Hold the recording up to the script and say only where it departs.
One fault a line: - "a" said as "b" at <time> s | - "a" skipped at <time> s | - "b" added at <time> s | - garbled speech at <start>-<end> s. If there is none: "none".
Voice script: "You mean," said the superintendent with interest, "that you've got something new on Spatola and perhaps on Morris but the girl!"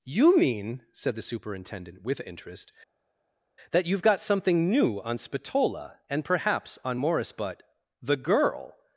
none